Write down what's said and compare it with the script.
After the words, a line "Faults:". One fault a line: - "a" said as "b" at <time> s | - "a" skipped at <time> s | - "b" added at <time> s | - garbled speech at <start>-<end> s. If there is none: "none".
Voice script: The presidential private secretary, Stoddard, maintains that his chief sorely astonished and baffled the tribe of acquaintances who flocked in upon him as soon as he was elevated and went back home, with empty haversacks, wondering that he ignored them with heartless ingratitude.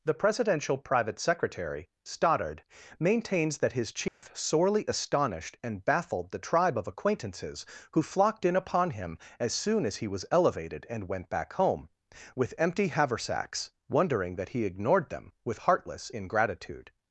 The presidential private secretary, Stoddard, maintains that his chief sorely astonished and baffled the tribe of acquaintances who flocked in upon him as soon as he was elevated and went back home, with empty haversacks, wondering that he ignored them with heartless ingratitude.
Faults:
none